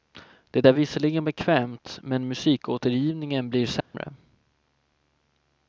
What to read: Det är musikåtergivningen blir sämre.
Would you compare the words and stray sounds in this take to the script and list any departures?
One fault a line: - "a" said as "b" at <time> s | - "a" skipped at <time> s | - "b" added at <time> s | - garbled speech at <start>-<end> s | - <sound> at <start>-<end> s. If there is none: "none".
- "visserligen bekvämt men" added at 0.7 s
- dropout at 3.8-3.9 s